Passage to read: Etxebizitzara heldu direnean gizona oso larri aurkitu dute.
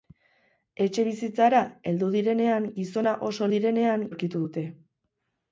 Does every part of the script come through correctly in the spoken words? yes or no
no